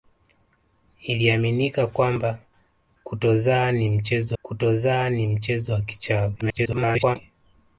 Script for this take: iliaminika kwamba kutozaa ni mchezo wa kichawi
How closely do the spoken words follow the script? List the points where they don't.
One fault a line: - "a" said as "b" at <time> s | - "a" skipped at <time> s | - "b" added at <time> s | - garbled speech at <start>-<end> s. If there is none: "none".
- "kutozaa ni mchezo" added at 4.4 s
- garbled speech at 6.4-7.2 s